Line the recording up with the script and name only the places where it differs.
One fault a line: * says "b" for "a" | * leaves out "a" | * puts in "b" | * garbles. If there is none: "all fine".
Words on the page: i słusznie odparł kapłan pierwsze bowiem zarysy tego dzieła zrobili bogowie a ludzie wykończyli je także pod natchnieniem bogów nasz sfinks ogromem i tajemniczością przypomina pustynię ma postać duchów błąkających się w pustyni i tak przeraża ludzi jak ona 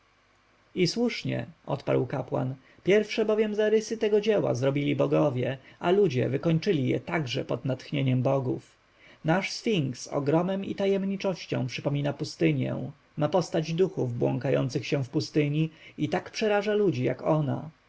all fine